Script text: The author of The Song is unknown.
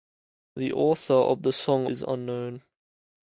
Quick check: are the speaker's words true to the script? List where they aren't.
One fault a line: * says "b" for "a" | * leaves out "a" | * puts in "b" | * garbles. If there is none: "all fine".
all fine